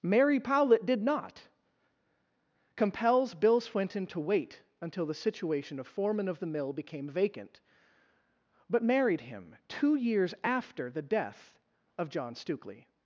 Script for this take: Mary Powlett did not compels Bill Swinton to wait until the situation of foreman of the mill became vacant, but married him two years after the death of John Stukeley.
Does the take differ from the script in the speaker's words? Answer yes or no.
no